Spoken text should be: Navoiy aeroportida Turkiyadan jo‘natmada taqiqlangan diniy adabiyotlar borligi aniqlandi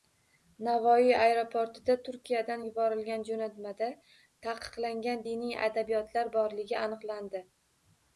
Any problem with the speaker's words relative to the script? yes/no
yes